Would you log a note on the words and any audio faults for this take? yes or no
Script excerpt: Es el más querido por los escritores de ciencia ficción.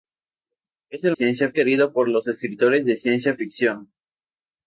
yes